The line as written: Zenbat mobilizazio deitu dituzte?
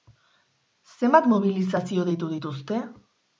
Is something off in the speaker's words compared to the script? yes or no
no